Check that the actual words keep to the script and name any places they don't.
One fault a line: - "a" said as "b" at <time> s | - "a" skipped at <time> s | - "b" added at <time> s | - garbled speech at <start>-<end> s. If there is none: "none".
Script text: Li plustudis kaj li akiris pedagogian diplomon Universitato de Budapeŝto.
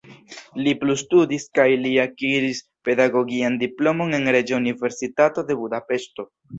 - "en Reĝa" added at 4.2 s